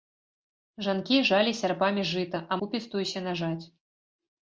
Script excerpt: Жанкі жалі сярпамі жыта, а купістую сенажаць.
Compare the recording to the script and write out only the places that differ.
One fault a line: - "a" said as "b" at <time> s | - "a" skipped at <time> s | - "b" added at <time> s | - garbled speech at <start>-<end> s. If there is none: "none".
none